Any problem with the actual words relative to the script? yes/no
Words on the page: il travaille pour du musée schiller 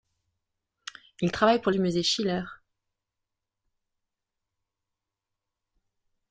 no